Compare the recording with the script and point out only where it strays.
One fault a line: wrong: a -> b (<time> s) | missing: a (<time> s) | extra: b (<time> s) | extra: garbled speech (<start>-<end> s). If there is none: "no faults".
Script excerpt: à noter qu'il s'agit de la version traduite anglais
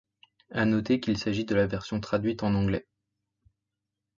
extra: en (2.4 s)